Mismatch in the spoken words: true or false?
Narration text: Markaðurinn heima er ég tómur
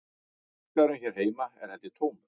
true